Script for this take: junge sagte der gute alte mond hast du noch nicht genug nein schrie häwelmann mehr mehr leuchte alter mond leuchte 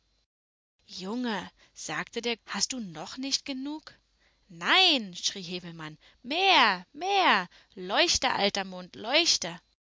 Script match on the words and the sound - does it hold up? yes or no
no